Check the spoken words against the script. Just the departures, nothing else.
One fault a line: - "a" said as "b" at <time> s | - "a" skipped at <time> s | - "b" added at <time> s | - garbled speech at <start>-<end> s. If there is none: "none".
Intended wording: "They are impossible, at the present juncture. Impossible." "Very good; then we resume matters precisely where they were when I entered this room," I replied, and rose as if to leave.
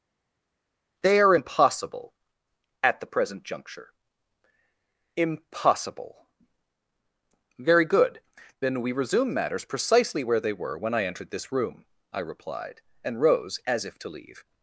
none